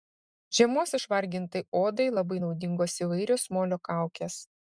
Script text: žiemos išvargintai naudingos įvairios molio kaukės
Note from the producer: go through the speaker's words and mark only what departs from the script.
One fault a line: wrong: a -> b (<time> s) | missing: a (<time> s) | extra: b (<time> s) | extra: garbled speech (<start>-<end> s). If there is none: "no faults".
extra: odai labai (1.8 s)